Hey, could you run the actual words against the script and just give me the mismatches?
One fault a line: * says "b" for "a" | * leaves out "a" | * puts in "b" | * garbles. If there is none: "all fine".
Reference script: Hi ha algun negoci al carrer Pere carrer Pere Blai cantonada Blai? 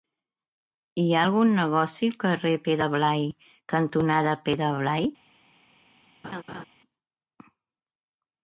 * leaves out "carrer Pere"
* puts in "Pere"